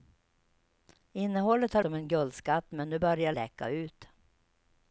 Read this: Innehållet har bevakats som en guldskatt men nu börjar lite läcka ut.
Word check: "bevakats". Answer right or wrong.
wrong